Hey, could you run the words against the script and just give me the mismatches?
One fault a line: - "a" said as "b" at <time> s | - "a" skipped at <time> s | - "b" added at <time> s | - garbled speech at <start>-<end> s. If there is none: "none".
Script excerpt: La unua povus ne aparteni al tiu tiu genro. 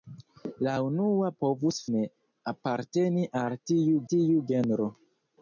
none